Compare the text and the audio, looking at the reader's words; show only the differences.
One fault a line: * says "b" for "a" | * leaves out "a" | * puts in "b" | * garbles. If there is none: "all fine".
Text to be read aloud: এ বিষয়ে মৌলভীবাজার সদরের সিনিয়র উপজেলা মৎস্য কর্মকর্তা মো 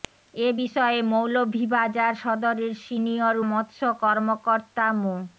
* leaves out "উপজেলা"